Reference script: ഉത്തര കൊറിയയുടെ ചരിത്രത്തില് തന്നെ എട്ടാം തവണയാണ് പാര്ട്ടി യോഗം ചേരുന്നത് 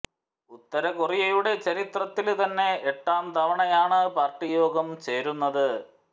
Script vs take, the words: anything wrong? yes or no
no